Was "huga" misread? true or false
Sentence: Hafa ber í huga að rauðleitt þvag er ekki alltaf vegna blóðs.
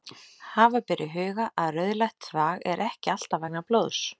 false